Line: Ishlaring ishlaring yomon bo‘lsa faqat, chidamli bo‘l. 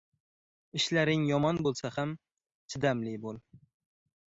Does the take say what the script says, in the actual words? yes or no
no